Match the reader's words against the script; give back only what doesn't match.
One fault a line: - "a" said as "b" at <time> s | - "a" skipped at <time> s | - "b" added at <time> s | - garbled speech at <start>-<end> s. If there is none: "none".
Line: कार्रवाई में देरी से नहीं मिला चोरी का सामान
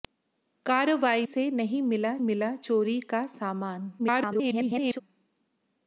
- "में देरी" skipped at 1.2 s
- "मिला" added at 2.2 s
- garbled speech at 4.0-5.0 s